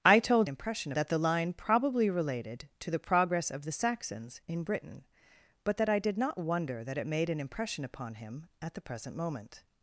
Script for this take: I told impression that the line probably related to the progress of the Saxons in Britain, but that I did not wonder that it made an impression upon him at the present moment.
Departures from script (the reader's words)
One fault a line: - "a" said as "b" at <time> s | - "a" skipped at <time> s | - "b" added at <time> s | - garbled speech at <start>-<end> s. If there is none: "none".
none